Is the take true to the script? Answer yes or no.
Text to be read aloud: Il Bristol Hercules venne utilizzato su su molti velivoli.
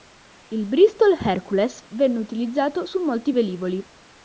no